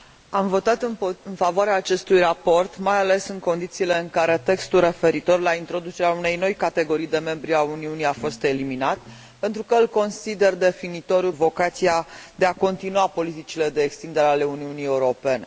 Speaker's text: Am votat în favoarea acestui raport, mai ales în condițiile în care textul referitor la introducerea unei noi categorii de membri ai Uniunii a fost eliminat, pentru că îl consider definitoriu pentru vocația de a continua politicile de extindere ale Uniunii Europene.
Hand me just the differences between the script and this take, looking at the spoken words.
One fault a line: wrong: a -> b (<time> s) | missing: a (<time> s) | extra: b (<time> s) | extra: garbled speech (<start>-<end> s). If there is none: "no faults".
missing: pentru (11.3 s)